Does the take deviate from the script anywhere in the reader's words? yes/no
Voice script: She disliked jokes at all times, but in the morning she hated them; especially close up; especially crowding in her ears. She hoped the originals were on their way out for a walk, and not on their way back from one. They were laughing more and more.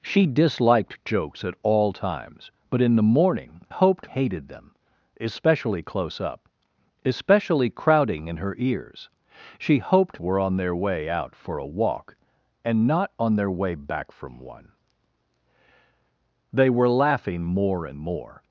yes